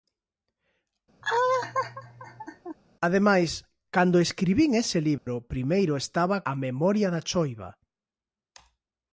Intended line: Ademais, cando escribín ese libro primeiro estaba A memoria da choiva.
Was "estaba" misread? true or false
false